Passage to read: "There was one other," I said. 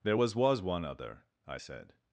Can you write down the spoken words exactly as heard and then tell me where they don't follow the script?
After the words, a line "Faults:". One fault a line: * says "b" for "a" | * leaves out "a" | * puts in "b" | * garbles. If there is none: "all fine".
"There was was one other," I said.
Faults:
* puts in "was"